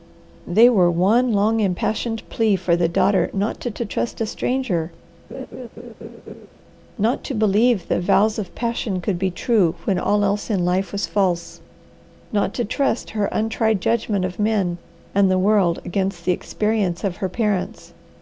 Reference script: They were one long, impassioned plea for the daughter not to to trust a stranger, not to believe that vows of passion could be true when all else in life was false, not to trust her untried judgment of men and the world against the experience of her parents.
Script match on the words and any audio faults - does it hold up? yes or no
no